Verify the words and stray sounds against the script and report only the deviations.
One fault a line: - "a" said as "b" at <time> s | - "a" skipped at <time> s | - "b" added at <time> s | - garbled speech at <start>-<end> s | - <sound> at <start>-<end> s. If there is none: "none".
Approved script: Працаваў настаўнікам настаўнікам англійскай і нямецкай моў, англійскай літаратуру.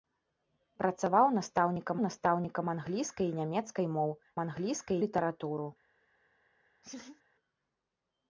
- laugh at 6.8-7.2 s